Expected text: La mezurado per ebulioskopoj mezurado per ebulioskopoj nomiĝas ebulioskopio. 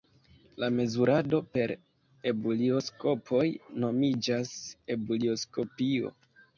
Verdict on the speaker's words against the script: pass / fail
fail